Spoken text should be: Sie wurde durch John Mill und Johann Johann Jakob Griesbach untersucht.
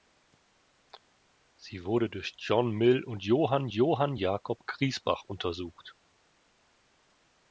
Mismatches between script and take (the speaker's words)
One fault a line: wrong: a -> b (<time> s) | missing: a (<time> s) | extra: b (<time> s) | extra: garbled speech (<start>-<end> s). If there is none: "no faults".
no faults